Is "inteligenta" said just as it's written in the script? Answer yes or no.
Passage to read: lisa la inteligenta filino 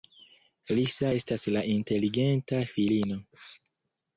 yes